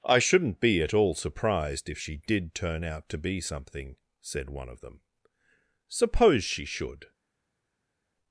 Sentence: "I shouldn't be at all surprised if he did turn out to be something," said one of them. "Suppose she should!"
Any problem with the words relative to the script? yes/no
yes